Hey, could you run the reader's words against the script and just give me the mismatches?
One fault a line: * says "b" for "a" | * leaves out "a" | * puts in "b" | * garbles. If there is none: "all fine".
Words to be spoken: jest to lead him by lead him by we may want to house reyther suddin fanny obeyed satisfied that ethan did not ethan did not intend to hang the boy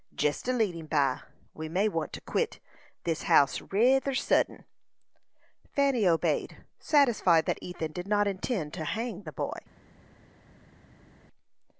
* leaves out "lead him by"
* puts in "quit this"
* leaves out "ethan did not"